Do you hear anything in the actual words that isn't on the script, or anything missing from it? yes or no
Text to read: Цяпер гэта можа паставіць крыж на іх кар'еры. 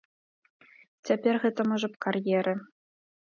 yes